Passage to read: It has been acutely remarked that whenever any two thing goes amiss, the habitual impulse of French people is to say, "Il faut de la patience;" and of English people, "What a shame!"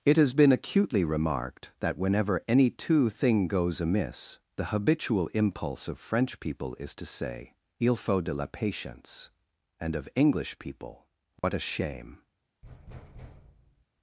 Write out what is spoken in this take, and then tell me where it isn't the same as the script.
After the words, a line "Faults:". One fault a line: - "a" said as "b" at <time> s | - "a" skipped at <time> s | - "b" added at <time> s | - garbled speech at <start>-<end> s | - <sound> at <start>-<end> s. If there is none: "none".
It has been acutely remarked that whenever any two thing goes amiss, the habitual impulse of French people is to say, "Il faut de la patience;" and of English people, "What a shame!"
Faults:
- dropout at 11.4-11.4 s
- thud at 12.6-13.9 s